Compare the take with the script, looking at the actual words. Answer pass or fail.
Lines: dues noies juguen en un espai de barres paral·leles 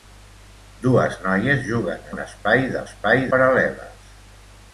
fail